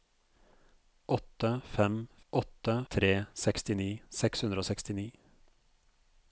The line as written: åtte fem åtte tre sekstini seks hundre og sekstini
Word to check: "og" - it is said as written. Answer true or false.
true